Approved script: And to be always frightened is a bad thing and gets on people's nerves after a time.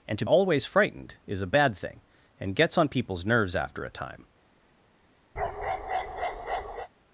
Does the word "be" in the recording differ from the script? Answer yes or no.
yes